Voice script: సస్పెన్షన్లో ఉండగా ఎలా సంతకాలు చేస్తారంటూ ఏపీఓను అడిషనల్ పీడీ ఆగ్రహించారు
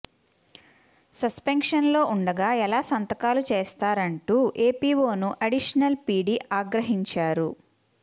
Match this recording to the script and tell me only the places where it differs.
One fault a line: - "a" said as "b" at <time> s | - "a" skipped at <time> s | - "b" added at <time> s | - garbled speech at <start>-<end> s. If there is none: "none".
none